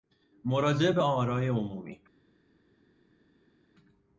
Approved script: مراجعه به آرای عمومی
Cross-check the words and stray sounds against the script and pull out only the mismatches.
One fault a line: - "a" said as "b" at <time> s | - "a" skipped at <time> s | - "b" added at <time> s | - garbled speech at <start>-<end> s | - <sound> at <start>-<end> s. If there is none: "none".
none